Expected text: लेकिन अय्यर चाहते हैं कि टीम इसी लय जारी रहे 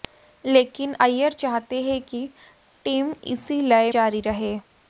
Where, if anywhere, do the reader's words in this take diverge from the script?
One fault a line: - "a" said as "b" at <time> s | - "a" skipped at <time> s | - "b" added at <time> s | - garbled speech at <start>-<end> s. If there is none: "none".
none